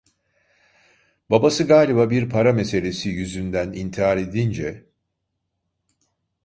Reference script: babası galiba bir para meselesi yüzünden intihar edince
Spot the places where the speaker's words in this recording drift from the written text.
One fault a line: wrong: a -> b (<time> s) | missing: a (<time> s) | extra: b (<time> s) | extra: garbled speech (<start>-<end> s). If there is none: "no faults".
no faults